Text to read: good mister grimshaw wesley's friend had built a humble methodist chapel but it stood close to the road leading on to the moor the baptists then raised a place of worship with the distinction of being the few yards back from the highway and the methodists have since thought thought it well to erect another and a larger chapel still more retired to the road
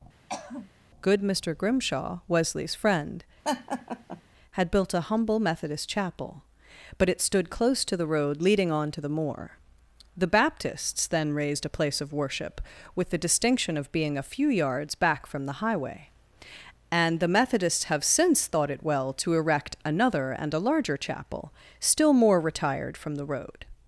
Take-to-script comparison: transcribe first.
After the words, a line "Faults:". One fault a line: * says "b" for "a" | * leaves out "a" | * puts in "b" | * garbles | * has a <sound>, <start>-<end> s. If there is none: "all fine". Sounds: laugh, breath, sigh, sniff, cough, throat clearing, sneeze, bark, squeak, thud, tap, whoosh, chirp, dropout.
good mister grimshaw wesley's friend had built a humble methodist chapel but it stood close to the road leading on to the moor the baptists then raised a place of worship with the distinction of being a few yards back from the highway and the methodists have since thought it well to erect another and a larger chapel still more retired from the road
Faults:
* has a throat clearing, 0.3-0.7 s
* has a laugh, 3.4-4.2 s
* says "a" for "the"
* leaves out "thought"
* says "from" for "to"